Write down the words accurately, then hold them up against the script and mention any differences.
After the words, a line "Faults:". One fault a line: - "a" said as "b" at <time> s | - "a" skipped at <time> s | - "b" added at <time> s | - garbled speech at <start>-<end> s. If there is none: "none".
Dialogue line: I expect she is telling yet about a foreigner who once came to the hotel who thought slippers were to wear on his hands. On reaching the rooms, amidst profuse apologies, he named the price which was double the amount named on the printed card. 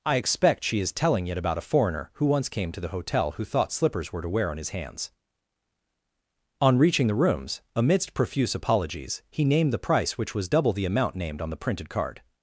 I expect she is telling it about a foreigner who once came to the hotel who thought slippers were to wear on his hands. On reaching the rooms, amidst profuse apologies, he named the price which was double the amount named on the printed card.
Faults:
- "yet" said as "it" at 1.3 s